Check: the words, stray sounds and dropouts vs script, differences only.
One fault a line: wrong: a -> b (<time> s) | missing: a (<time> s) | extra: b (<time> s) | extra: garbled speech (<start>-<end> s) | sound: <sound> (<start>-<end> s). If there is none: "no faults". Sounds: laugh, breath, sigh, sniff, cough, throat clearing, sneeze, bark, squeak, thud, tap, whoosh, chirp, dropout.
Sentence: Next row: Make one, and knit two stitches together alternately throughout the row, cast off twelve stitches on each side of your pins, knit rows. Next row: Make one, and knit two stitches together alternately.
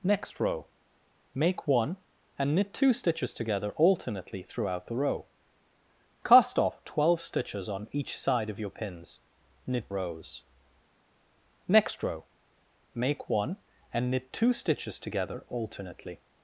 no faults